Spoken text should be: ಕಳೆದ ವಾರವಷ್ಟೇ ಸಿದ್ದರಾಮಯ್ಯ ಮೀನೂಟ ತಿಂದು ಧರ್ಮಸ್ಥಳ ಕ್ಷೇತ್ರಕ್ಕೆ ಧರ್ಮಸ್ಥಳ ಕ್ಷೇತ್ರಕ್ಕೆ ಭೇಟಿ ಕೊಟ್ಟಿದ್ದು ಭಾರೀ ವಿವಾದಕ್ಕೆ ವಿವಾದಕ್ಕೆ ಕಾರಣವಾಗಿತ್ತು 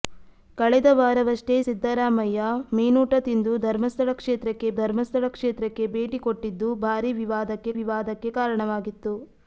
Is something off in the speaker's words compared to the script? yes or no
no